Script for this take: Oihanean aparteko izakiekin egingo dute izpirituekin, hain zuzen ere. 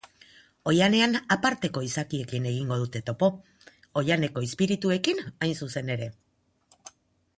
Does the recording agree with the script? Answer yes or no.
no